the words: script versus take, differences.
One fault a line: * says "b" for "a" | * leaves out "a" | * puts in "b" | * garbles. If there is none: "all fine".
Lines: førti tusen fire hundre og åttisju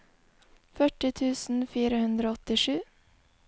all fine